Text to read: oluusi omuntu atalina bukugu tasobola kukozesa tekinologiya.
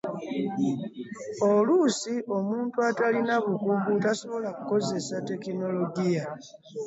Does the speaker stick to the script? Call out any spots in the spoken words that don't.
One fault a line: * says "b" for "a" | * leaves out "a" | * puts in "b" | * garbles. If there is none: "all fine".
all fine